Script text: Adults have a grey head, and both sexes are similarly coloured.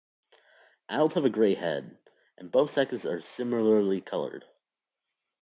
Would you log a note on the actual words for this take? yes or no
no